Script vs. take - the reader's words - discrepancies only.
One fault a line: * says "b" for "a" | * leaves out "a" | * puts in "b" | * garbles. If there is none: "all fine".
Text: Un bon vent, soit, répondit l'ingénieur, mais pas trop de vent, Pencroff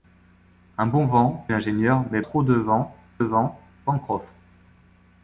* leaves out "soit répondit"
* leaves out "pas"
* puts in "vent"